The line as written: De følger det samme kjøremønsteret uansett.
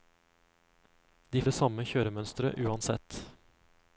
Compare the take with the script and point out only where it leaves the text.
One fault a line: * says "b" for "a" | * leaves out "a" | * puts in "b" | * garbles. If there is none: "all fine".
* leaves out "følger"